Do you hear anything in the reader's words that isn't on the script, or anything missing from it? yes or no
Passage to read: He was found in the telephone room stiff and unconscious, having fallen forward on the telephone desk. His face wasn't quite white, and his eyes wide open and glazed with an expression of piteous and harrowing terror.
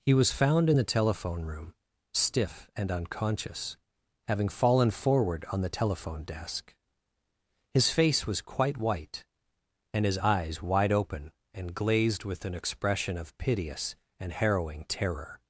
yes